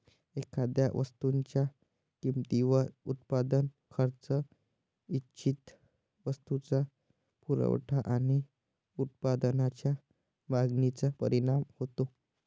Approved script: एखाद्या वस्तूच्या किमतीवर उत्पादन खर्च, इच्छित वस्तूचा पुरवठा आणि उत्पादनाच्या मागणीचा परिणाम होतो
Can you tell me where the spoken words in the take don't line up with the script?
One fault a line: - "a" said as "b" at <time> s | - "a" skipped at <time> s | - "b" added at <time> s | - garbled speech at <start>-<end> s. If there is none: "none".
none